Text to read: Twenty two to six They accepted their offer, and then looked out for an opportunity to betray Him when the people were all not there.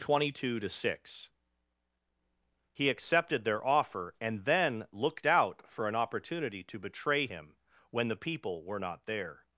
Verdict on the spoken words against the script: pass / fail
fail